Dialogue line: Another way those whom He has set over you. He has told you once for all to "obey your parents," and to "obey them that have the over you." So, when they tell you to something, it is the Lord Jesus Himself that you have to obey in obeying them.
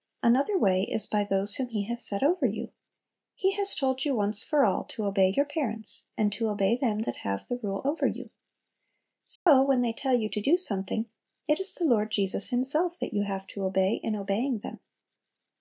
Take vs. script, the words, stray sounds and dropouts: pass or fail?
fail